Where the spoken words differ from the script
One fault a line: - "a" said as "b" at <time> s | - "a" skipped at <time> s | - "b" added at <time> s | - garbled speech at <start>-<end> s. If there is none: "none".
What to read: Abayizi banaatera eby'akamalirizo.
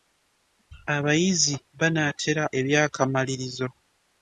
none